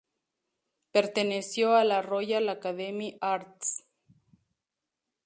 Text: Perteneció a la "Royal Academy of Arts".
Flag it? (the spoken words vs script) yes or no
yes